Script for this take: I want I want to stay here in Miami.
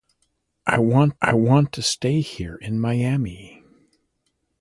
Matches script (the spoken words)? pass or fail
pass